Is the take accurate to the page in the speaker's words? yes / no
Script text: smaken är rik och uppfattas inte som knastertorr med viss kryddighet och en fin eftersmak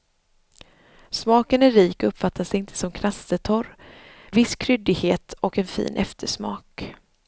no